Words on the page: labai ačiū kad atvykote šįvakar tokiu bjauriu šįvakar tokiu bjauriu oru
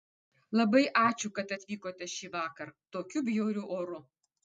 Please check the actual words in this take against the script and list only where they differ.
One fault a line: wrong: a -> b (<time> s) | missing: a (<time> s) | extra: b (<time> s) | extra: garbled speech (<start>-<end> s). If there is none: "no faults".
missing: šįvakar tokiu bjauriu (3.7 s)